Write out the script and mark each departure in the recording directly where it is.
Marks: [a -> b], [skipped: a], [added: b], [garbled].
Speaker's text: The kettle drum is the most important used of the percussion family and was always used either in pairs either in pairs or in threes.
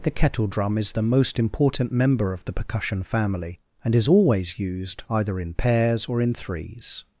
The kettle drum is the most important [used -> member] of the percussion family and [was -> is] always used either in pairs [skipped: either in pairs] or in threes.